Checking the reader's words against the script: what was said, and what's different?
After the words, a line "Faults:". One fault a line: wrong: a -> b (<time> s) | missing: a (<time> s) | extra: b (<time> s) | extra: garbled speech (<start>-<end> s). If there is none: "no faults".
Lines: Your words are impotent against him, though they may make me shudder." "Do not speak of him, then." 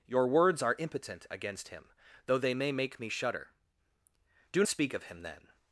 Your words are impotent against him, though they may make me shudder." "Do speak of him, then."
Faults:
missing: not (4.6 s)